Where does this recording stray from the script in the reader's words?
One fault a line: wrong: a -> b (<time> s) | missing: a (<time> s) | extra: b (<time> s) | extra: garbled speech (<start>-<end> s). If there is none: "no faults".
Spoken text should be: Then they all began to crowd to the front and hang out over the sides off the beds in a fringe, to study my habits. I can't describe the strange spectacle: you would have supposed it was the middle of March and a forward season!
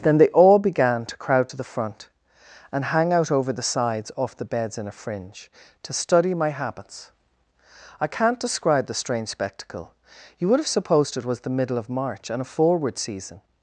no faults